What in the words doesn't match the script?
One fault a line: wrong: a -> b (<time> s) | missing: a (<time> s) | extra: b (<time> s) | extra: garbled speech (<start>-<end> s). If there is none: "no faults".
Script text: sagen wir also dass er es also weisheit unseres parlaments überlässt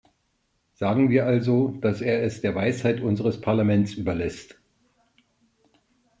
wrong: also -> der (2.4 s)